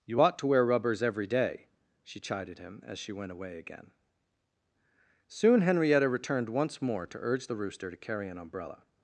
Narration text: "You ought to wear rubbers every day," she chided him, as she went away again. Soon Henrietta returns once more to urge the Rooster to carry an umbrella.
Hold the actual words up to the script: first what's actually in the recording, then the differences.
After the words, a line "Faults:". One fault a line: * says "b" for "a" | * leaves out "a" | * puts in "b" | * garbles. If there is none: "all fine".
"You ought to wear rubbers every day," she chided him, as she went away again. Soon Henrietta returned once more to urge the Rooster to carry an umbrella.
Faults:
* says "returned" for "returns"